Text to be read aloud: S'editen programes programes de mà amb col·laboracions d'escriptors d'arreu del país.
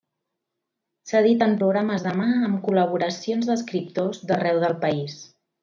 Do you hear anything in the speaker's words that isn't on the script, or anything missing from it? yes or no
yes